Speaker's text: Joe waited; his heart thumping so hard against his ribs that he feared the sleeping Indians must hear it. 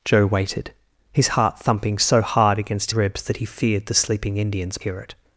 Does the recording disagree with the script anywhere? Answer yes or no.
yes